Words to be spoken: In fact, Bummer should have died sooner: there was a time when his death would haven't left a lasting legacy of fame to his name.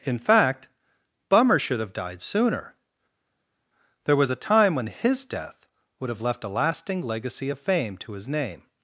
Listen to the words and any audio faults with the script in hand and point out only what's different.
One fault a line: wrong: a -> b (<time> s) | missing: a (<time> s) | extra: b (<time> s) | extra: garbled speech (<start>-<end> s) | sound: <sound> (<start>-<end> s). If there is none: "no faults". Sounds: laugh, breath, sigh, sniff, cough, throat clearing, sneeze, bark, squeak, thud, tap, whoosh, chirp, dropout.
wrong: haven't -> have (6.1 s)